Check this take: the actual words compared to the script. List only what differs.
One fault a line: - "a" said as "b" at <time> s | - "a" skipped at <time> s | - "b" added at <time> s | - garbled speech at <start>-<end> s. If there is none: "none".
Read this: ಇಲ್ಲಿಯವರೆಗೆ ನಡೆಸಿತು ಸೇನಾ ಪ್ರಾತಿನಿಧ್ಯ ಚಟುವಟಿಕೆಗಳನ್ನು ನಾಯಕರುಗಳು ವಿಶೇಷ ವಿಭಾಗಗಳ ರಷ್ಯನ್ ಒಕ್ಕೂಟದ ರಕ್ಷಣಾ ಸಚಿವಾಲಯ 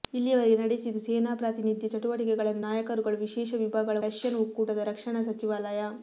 none